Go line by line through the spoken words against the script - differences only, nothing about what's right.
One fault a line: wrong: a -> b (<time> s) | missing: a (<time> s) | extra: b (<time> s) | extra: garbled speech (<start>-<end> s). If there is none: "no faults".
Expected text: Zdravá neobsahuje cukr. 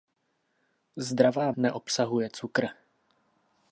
no faults